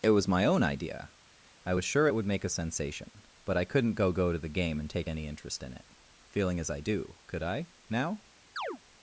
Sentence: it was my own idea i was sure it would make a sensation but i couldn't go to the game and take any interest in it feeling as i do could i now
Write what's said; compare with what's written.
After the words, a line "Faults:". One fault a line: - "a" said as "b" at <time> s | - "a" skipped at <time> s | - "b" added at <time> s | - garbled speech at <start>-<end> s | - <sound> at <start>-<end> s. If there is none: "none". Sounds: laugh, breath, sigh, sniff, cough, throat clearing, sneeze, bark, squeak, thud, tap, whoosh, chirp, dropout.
it was my own idea i was sure it would make a sensation but i couldn't go go to the game and take any interest in it feeling as i do could i now
Faults:
- "go" added at 4.1 s
- chirp at 8.6-8.8 s